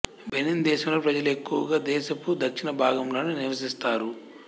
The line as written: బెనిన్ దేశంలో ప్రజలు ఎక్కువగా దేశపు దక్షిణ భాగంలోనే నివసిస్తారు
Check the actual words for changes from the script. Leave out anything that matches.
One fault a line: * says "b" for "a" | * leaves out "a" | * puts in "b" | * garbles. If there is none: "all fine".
all fine